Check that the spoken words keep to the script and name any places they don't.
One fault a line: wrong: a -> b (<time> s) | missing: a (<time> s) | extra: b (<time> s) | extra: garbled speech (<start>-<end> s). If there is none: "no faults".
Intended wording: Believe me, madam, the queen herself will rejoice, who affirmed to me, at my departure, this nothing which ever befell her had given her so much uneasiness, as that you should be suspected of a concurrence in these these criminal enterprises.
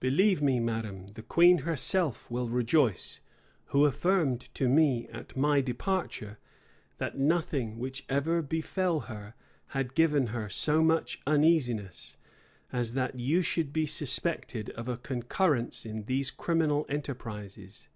wrong: this -> that (7.0 s)
missing: these (16.3 s)